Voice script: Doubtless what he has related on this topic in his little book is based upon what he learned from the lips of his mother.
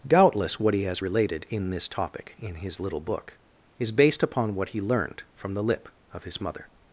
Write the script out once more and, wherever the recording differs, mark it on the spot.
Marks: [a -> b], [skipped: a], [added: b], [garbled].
Doubtless what he has related [on -> in] this topic in his little book is based upon what he learned from the [lips -> lip] of his mother.